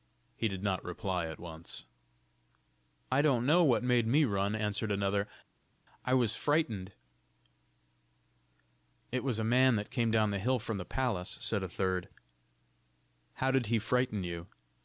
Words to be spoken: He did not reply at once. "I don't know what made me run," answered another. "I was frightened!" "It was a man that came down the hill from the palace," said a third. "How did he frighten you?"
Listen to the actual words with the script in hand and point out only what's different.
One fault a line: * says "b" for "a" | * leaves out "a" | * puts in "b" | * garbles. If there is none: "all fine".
all fine